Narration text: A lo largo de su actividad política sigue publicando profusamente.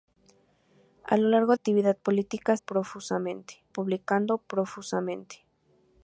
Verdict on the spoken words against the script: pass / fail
fail